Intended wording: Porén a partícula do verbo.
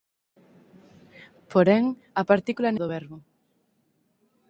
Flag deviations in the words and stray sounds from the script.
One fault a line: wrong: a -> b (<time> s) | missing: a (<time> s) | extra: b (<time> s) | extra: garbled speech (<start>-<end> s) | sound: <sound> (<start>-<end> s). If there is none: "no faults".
no faults